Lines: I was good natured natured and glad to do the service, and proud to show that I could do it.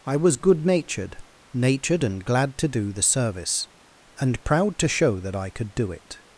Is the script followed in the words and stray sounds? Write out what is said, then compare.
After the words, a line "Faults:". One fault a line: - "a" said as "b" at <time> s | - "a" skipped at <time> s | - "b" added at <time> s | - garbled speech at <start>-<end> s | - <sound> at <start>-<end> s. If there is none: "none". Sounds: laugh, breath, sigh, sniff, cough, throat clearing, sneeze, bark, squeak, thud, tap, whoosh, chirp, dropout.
I was good natured natured and glad to do the service, and proud to show that I could do it.
Faults:
none